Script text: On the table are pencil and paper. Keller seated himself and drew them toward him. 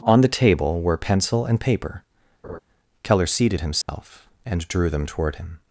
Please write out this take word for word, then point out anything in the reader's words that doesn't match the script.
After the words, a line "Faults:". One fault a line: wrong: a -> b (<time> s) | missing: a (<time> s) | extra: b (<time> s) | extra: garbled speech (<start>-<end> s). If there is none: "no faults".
On the table were pencil and paper. Keller seated himself and drew them toward him.
Faults:
wrong: are -> were (0.8 s)